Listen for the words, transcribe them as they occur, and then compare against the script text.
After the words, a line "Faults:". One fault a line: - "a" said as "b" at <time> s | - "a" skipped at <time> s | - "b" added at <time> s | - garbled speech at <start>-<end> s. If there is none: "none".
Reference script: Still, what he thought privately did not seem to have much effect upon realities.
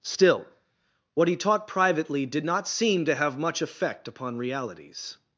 Still, what he taught privately did not seem to have much effect upon realities.
Faults:
- "thought" said as "taught" at 1.4 s